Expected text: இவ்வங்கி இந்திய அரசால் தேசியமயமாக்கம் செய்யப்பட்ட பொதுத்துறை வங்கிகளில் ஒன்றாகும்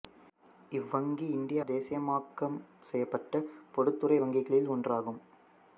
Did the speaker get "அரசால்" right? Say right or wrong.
wrong